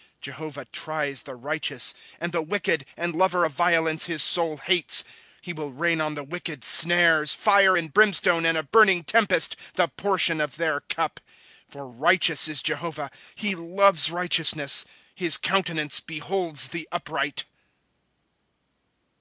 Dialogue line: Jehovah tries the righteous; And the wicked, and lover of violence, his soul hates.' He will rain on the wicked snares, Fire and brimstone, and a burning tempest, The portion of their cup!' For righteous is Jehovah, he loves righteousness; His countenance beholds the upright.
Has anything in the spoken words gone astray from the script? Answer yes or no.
no